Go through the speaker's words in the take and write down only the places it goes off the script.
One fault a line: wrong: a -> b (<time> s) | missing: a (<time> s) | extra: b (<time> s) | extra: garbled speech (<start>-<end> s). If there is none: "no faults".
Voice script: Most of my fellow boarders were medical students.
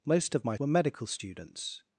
missing: fellow boarders (0.5 s)